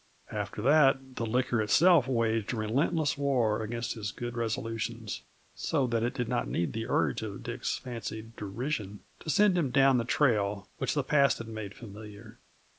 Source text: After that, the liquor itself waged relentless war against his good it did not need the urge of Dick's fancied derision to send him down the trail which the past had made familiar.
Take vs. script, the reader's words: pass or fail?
fail